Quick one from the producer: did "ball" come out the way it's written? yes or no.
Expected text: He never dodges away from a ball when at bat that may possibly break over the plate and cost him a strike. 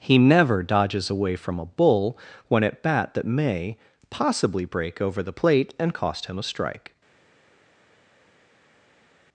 no